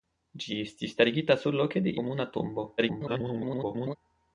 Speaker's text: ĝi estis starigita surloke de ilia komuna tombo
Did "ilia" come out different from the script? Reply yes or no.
yes